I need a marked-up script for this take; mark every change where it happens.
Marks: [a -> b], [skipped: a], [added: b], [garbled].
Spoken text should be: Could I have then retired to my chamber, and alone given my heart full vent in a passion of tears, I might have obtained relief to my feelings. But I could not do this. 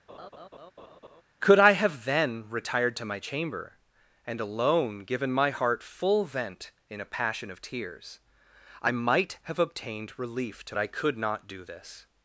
Could I have then retired to my chamber, and alone given my heart full vent in a passion of tears, I might have obtained relief to [skipped: my feelings. But] I could not do this.